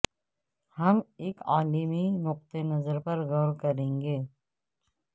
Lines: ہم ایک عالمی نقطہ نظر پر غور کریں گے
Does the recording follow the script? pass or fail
pass